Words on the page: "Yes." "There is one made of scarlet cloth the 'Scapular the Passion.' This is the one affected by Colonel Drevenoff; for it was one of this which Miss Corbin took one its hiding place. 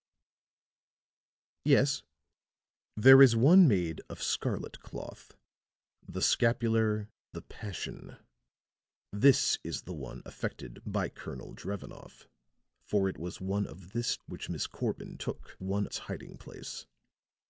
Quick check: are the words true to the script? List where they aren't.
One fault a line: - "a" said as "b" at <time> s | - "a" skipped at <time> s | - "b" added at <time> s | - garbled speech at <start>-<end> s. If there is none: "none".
none